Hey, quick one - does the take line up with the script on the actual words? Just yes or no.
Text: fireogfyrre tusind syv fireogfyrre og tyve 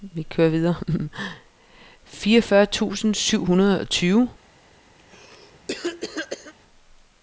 no